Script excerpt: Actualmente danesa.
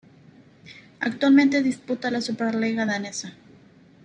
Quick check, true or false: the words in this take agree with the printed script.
false